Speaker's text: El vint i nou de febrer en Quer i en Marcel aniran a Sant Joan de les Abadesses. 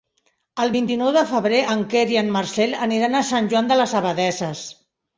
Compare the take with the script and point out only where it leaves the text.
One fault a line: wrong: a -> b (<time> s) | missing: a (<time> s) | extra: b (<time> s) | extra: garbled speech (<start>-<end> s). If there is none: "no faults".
no faults